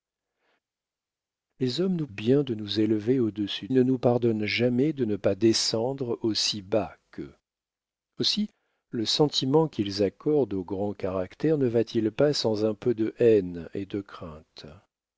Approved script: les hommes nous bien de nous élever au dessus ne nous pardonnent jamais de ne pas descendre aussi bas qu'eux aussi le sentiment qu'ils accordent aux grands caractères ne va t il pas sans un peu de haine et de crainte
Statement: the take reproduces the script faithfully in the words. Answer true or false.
true